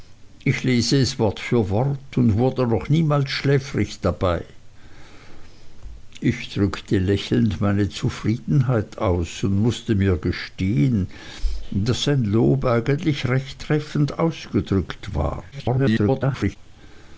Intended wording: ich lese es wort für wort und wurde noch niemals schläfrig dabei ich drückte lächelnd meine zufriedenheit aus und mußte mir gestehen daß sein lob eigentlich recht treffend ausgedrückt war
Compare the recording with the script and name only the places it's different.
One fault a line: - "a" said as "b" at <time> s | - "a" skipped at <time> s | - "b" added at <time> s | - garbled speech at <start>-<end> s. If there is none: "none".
- garbled speech at 15.5-16.6 s